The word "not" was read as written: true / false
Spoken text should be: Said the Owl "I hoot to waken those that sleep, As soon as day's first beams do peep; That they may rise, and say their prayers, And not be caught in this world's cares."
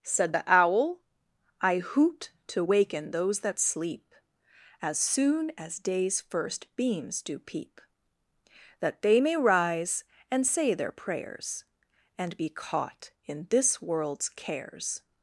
false